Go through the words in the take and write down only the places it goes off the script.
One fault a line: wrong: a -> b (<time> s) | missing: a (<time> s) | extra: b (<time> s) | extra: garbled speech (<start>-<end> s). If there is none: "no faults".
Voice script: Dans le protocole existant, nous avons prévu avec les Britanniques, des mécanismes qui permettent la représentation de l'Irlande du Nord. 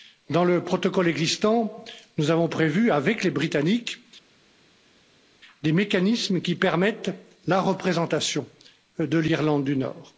no faults